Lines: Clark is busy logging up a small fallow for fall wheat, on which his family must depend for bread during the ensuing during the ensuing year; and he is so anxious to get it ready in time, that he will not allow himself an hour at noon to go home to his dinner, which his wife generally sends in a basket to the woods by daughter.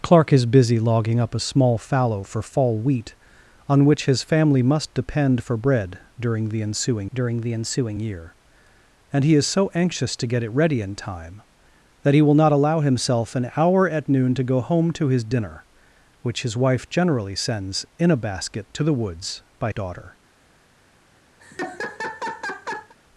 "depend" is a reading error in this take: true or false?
false